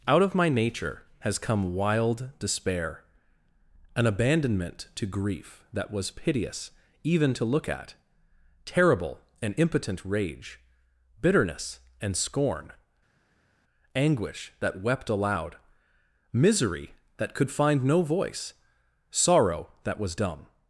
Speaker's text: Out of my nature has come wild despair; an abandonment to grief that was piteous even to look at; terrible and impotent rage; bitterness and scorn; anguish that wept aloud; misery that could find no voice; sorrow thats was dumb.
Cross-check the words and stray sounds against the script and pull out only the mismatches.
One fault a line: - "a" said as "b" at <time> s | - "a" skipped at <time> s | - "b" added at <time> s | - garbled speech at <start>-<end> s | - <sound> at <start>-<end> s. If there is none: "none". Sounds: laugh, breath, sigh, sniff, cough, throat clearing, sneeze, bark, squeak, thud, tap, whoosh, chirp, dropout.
- "thats" said as "that" at 19.8 s